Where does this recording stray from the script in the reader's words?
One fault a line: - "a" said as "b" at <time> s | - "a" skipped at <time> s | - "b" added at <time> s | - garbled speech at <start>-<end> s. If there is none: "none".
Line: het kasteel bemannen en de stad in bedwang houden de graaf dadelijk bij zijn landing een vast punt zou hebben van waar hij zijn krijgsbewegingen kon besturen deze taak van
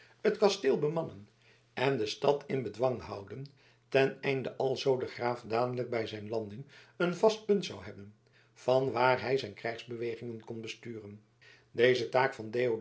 - "ten einde alzoo" added at 3.9 s